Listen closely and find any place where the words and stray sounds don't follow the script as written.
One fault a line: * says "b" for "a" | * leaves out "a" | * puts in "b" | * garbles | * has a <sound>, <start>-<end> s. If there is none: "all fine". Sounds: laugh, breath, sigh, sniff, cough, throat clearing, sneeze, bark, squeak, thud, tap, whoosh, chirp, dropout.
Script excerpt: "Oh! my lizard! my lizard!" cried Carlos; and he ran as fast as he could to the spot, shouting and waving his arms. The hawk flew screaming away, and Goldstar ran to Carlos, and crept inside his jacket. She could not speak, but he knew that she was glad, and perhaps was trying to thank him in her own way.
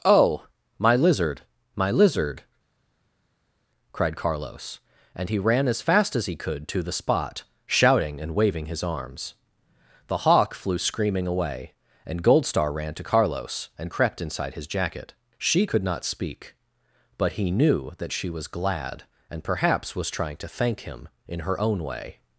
all fine